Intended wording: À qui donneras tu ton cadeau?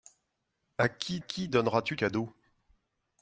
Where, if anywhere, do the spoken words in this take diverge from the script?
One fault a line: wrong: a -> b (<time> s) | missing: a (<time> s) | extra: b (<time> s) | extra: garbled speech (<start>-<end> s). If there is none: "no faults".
extra: qui (1.2 s)
missing: ton (2.0 s)